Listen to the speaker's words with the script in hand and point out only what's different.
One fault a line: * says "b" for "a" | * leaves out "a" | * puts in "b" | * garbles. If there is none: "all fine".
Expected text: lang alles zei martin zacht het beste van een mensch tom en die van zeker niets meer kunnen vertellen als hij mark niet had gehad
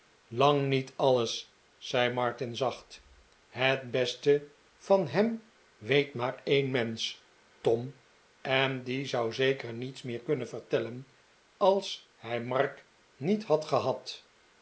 * puts in "niet"
* puts in "hem weet maar"
* says "zou" for "van"